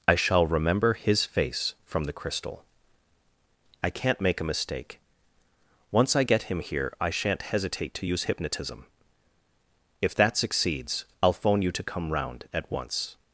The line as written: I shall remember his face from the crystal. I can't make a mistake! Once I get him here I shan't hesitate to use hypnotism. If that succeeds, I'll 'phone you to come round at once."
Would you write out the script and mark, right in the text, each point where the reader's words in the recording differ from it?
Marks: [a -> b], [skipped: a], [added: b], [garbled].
I shall remember his face from the crystal. I can't make a mistake! Once I get him here I shan't hesitate to use hypnotism. If that succeeds, I'll 'phone you to come round at once."